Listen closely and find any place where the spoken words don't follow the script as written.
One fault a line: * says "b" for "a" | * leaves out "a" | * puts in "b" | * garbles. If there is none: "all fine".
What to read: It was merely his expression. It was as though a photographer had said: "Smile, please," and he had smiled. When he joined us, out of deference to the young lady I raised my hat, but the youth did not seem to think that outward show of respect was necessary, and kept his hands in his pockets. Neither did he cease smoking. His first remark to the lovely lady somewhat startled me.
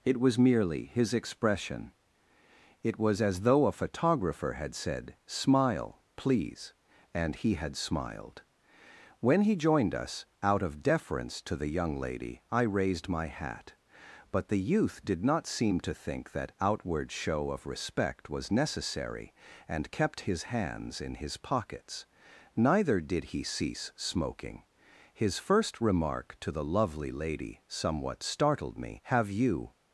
* puts in "Have you"